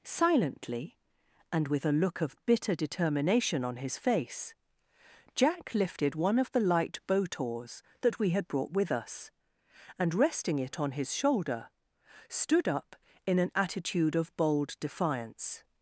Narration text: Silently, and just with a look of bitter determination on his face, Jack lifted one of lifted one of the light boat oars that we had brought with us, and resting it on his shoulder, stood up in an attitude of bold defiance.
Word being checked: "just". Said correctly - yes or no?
no